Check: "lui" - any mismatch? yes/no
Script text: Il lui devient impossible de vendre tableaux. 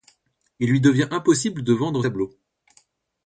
no